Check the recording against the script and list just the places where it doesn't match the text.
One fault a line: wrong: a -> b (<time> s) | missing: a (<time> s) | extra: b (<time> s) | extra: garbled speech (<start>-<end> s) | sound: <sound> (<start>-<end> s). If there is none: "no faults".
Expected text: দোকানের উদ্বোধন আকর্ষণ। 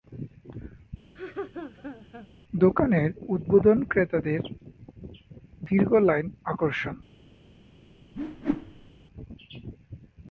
sound: laugh (1.1-2.3 s)
extra: ক্রেতাদের দীর্ঘ লাইন (3.9 s)
sound: whoosh (8.1-8.9 s)